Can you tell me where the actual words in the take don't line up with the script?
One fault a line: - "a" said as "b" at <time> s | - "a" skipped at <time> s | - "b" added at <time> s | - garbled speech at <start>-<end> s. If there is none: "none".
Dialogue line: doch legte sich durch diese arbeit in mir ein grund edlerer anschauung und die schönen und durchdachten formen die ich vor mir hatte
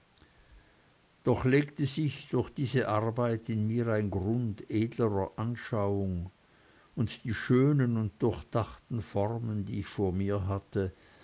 none